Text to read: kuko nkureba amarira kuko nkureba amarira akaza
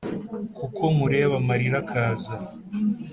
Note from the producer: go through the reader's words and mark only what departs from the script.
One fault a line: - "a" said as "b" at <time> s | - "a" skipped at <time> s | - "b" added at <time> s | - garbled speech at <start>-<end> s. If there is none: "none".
- "kuko nkureba amarira" skipped at 1.8 s